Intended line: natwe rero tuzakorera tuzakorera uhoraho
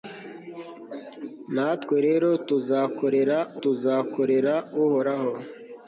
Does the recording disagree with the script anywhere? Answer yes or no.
no